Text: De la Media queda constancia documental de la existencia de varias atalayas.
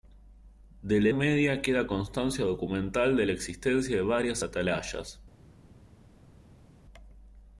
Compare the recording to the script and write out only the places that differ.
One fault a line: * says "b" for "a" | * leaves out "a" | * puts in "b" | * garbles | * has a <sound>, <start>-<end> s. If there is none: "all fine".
all fine